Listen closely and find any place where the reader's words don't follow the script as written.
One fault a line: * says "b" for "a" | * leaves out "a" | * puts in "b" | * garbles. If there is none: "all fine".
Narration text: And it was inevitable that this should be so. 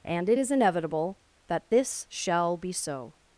* says "is" for "was"
* says "shall" for "should"